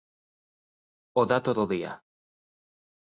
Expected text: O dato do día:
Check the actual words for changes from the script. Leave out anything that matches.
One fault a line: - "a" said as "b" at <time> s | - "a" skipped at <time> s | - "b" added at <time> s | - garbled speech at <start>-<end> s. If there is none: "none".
none